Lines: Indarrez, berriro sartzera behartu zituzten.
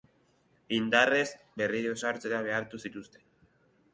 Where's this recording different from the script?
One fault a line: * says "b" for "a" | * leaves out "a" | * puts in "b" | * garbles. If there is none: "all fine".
all fine